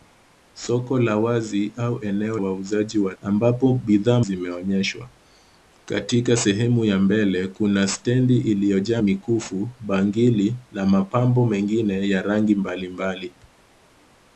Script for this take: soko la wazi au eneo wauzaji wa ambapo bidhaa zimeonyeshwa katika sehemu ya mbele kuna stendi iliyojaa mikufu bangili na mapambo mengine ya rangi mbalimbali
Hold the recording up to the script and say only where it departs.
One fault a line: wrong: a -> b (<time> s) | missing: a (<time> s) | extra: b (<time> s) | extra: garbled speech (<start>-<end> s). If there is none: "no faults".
no faults